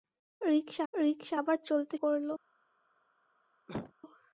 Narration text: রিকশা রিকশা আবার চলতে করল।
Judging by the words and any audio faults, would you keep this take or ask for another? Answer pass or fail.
fail